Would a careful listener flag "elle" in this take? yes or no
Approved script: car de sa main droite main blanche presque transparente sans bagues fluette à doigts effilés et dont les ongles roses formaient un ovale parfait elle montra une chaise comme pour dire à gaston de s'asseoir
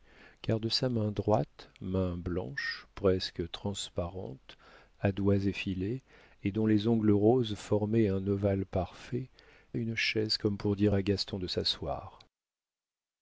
yes